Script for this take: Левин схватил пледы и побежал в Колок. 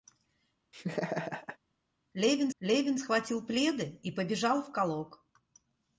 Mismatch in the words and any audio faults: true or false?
true